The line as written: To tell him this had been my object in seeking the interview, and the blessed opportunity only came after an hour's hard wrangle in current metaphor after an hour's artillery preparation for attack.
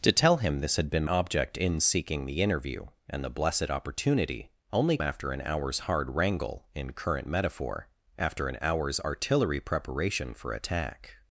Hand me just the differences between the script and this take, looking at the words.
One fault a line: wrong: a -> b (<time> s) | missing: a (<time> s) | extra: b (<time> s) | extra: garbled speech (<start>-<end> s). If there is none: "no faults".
missing: my (1.1 s)
missing: came (5.0 s)